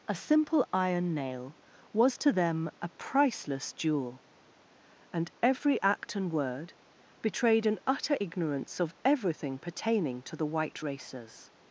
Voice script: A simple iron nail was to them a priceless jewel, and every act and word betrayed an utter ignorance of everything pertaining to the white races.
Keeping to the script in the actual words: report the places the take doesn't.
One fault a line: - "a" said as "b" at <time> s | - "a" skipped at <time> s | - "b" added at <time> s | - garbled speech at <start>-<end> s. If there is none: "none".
none